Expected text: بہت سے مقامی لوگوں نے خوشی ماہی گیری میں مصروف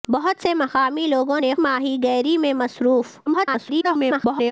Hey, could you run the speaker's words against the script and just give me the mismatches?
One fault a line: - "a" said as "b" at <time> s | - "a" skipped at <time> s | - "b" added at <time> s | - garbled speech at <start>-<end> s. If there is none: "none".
- "خوشی" skipped at 1.5 s
- garbled speech at 3.3-4.5 s